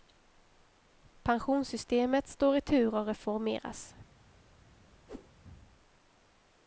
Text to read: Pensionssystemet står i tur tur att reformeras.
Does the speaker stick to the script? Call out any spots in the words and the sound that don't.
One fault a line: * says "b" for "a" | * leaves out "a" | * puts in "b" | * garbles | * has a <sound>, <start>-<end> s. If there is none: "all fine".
* leaves out "tur"
* has a whoosh, 5.1-5.3 s